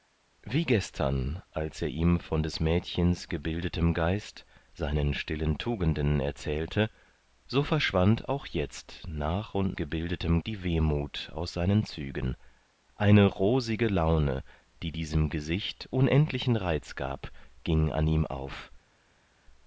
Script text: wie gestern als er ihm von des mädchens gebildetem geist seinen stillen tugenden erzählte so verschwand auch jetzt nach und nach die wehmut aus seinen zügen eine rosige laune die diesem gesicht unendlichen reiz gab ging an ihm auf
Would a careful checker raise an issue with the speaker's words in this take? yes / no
yes